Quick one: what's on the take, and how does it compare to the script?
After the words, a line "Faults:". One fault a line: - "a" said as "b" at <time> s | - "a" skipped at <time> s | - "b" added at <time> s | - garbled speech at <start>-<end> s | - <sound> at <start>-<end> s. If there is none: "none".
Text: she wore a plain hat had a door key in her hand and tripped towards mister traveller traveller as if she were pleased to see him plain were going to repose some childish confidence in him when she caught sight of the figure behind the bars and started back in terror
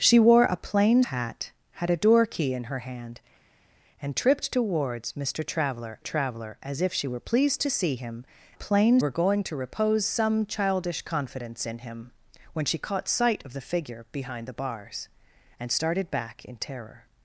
she wore a plain hat had a door key in her hand and tripped towards mister traveller traveller as if she were pleased to see him plain were going to repose some childish confidence in him when she caught sight of the figure behind the bars and started back in terror
Faults:
none